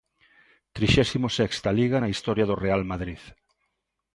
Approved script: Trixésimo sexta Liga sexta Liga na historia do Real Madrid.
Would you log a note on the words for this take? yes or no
yes